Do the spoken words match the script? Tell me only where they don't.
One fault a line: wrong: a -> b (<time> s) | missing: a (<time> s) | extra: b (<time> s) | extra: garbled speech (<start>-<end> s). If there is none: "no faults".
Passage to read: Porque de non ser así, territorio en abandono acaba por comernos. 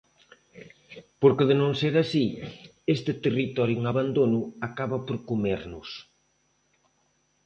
extra: este (3.0 s)